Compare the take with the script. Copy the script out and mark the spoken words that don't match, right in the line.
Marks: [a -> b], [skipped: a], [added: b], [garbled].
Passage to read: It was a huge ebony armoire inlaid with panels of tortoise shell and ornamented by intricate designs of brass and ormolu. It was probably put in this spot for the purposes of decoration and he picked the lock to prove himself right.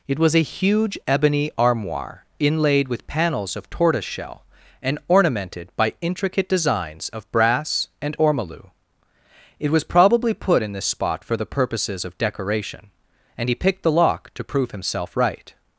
It was a huge ebony armoire inlaid with panels of tortoise shell and ornamented by intricate designs of brass and ormolu. It was probably put in this spot for the purposes of decoration and he picked the lock to prove himself right.